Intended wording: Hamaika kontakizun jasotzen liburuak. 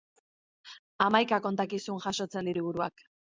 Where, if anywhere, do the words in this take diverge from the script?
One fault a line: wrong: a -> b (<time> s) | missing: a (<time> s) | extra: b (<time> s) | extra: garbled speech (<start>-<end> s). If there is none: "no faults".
no faults